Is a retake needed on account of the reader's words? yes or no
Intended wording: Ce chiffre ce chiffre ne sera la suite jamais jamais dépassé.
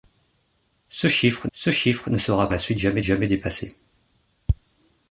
no